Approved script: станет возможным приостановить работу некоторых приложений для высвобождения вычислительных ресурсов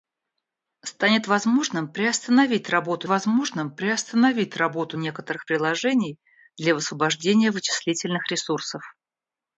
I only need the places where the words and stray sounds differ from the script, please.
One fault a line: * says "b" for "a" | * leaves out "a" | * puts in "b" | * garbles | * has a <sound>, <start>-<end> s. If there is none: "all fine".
* puts in "возможным приостановить работу"